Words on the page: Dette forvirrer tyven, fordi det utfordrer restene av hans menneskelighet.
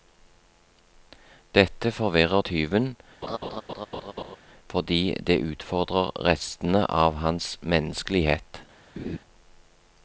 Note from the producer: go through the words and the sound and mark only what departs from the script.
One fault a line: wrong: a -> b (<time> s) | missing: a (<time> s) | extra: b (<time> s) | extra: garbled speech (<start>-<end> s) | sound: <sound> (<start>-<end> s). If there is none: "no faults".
sound: laugh (3.2-4.4 s)
sound: laugh (9.0-9.2 s)